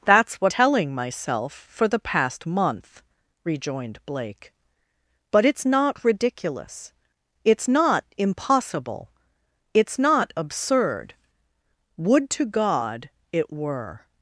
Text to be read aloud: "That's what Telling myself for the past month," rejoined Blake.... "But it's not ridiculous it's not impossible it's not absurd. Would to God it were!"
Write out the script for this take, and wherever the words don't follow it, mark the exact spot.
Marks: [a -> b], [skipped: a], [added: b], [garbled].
"That's what Telling myself for the past month," rejoined Blake.... "But it's not ridiculous it's not impossible it's not absurd. Would to God it were!"